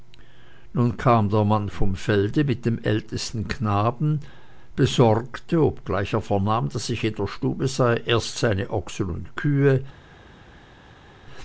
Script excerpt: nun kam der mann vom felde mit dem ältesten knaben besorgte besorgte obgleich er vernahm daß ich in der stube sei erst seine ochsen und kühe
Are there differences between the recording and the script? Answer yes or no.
yes